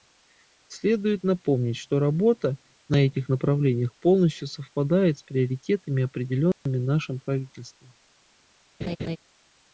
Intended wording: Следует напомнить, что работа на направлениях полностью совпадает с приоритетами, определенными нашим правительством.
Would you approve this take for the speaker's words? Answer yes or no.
no